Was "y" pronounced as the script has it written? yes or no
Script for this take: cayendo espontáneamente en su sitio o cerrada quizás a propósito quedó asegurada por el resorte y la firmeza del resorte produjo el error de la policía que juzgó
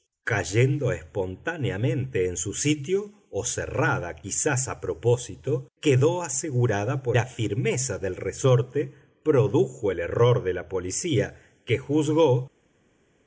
no